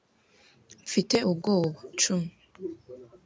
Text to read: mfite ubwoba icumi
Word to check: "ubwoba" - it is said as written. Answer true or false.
true